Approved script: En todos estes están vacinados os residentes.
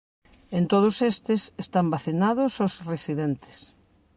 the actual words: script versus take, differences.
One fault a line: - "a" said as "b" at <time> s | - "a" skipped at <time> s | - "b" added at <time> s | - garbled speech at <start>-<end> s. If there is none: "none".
none